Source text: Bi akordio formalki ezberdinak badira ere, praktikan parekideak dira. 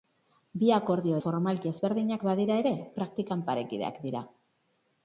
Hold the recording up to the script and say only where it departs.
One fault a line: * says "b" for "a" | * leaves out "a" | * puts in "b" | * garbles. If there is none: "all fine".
all fine